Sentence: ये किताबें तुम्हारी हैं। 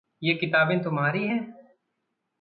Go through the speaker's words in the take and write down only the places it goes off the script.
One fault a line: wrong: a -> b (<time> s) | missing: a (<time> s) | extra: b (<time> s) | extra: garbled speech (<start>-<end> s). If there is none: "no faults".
no faults